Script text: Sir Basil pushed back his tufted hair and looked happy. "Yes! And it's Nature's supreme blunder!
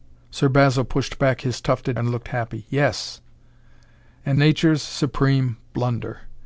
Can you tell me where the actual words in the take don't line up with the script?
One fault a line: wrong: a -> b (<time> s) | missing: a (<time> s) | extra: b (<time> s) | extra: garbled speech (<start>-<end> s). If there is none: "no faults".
missing: hair (2.0 s)
missing: it's (4.4 s)